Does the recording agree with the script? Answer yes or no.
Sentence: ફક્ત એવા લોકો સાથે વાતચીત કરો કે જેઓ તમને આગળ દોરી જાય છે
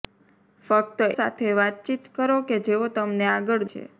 no